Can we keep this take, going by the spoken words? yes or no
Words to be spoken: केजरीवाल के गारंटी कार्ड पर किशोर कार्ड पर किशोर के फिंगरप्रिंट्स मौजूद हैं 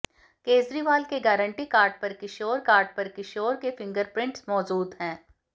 yes